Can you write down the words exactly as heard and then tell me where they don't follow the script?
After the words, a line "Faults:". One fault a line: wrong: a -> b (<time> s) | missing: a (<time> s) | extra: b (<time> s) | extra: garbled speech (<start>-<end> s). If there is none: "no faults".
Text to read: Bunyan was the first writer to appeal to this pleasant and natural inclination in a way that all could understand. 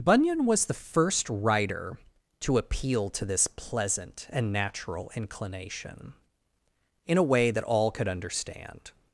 Bunyan was the first writer to appeal to this pleasant and natural inclination in a way that all could understand.
Faults:
no faults